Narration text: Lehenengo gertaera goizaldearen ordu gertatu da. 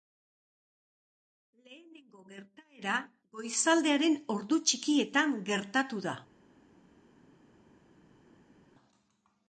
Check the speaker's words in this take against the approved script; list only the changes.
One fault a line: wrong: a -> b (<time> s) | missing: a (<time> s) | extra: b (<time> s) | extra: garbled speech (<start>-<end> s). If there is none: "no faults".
extra: txikietan (4.7 s)